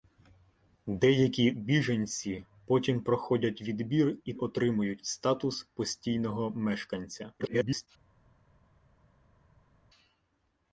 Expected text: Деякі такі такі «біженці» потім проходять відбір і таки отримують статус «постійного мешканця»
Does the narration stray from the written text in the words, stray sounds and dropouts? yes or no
yes